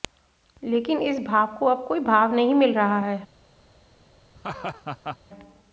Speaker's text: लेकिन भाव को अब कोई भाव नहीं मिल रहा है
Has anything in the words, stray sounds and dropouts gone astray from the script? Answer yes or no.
yes